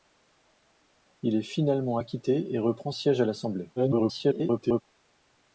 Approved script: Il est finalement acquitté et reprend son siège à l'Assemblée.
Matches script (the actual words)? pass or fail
fail